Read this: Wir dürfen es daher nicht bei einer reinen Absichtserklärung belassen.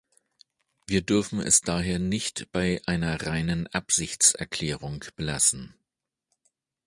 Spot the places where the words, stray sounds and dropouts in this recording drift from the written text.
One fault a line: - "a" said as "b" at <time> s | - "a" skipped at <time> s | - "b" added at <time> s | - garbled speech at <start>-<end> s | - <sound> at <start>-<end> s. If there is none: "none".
none